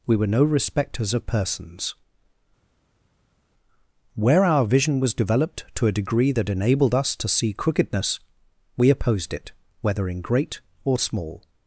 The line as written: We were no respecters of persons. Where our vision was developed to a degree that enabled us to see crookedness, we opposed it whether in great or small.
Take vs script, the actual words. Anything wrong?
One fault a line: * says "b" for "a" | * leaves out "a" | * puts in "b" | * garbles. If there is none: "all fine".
all fine